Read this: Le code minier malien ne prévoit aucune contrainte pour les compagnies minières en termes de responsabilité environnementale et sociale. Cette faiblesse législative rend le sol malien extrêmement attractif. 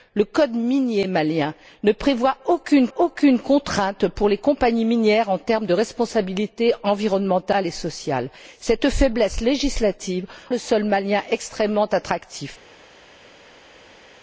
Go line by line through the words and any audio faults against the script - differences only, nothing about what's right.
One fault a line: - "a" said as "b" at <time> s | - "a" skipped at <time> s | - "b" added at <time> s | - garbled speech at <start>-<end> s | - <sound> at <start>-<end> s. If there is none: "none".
- "aucune" added at 3.0 s
- "rend" skipped at 10.3 s